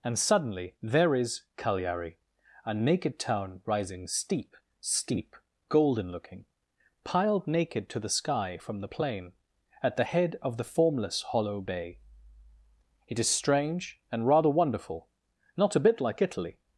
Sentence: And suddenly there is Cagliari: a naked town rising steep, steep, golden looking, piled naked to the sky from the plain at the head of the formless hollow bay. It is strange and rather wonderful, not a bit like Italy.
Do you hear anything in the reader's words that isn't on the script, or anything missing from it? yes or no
no